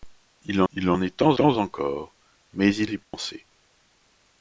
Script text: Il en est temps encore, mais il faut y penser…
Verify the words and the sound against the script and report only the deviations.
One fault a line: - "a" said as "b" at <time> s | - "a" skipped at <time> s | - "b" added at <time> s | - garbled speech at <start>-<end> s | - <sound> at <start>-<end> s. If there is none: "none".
- "il" added at 0.7 s
- "temps" added at 1.4 s
- "faut" skipped at 2.9 s
- dropout at 3.0-3.1 s